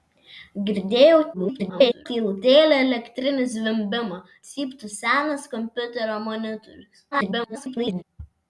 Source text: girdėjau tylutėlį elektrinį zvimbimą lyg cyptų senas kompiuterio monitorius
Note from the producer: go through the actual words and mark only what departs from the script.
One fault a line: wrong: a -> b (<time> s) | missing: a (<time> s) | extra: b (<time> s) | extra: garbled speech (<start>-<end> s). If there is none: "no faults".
extra: garbled speech (1.3-2.1 s)
missing: lyg (4.2 s)
extra: garbled speech (7.1-8.0 s)